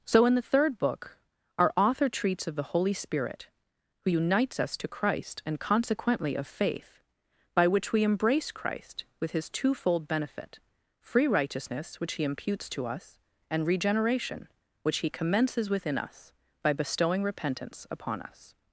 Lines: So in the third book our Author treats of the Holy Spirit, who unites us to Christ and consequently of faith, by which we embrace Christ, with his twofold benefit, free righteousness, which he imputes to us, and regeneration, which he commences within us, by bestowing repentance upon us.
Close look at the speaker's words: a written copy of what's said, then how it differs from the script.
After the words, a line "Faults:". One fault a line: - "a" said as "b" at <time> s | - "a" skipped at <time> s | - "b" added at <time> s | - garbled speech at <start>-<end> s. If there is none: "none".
So in the third book our Author treats of the Holy Spirit, who unites us to Christ and consequently of faith, by which we embrace Christ, with his twofold benefit, free righteousness, which he imputes to us, and regeneration, which he commences within us, by bestowing repentance upon us.
Faults:
none